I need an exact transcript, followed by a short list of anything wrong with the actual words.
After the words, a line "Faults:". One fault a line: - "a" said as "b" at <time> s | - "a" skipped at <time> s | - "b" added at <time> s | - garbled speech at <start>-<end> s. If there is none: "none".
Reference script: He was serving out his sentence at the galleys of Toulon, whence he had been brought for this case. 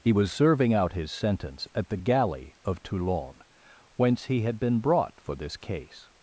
He was serving out his sentence at the galley of Toulon, whence he had been brought for this case.
Faults:
- "galleys" said as "galley" at 1.9 s